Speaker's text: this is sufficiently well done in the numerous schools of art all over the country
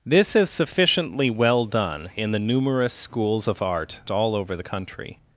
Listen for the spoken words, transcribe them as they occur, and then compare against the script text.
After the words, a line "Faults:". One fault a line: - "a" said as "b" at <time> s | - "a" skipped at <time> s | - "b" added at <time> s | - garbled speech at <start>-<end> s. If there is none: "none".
this is sufficiently well done in the numerous schools of art all over the country
Faults:
none